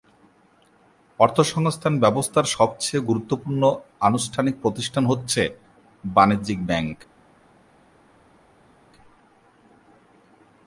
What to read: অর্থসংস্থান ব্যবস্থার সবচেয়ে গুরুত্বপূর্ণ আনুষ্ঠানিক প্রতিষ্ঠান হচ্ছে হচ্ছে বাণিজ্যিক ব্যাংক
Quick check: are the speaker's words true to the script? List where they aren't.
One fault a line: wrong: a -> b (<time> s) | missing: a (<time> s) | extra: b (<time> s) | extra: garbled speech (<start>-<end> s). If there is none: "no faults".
missing: হচ্ছে (5.4 s)